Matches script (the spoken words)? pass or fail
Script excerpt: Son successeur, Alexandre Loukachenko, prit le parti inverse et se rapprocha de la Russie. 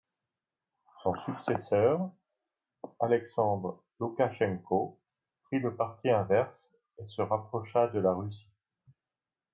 pass